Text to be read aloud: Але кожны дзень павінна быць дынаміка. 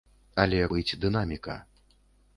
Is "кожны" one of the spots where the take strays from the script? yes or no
yes